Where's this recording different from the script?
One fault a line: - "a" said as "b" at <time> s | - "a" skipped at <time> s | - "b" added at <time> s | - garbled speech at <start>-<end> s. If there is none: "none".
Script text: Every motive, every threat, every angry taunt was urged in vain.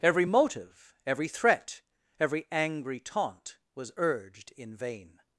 none